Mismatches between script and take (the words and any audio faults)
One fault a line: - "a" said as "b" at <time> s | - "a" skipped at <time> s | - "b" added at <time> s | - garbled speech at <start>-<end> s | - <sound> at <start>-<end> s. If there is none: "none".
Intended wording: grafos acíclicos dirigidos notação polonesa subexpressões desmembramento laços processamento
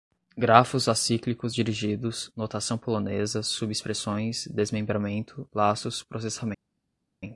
none